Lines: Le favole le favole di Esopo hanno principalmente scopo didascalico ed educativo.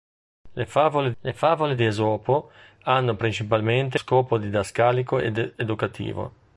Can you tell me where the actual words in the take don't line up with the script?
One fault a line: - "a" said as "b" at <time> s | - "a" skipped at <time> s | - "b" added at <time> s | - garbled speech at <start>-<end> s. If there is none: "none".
none